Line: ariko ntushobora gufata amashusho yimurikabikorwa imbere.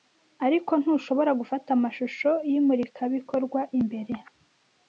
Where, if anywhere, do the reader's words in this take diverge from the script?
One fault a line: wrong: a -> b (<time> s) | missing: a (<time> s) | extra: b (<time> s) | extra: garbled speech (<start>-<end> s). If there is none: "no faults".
no faults